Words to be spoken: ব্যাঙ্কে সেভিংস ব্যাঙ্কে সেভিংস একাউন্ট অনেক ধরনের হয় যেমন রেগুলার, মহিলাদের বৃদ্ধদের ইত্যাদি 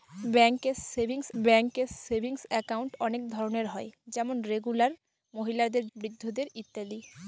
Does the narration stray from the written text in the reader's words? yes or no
no